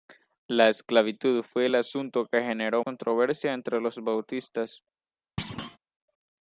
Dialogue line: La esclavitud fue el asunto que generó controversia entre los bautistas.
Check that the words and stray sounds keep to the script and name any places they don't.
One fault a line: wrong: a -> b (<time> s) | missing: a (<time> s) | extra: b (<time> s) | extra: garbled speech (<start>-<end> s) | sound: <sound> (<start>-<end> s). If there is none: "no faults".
sound: thud (5.4-5.8 s)